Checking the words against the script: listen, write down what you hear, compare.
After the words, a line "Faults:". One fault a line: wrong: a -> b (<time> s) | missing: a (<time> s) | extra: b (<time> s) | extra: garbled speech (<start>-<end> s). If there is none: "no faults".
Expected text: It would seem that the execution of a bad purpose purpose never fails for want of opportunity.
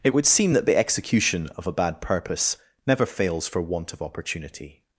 It would seem that the execution of a bad purpose never fails for want of opportunity.
Faults:
missing: purpose (2.6 s)